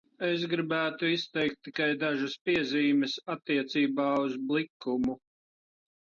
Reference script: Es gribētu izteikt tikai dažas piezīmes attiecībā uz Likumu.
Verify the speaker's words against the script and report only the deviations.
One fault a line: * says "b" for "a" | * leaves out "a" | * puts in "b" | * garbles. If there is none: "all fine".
all fine